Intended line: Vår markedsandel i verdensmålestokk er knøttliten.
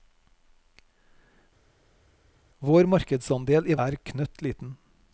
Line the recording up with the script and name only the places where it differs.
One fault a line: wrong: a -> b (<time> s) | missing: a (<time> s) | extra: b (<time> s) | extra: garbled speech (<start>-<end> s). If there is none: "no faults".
missing: verdensmålestokk (3.8 s)